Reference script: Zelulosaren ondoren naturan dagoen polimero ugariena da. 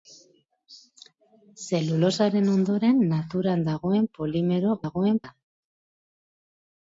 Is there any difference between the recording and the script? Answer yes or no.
yes